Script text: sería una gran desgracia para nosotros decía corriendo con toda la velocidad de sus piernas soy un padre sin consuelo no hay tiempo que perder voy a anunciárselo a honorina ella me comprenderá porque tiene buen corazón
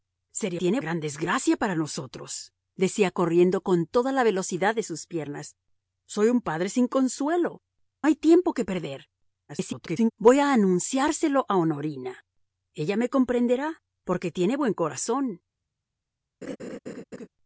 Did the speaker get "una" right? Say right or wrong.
wrong